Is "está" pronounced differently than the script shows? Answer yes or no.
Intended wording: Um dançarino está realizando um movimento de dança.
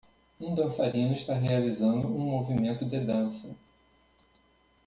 no